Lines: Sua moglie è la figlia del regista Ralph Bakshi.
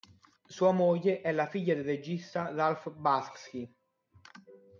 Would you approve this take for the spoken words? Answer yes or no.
yes